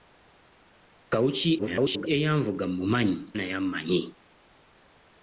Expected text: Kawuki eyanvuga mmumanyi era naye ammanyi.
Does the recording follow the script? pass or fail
fail